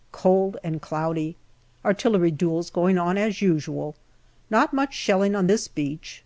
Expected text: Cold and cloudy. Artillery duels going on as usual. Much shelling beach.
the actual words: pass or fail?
fail